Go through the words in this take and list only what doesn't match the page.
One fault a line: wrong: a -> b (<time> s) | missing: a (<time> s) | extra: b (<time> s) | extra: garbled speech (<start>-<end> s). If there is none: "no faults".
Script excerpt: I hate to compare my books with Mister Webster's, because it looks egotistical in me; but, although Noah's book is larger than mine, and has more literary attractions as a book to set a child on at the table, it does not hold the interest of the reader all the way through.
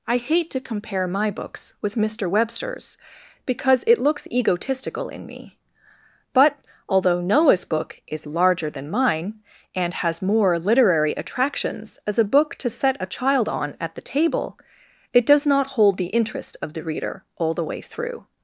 no faults